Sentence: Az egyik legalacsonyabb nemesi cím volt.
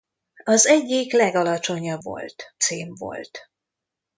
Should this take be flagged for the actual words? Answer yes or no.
yes